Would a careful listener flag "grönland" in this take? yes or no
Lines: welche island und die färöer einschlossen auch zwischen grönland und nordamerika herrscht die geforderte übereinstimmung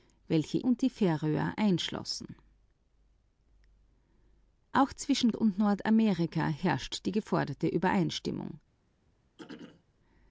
yes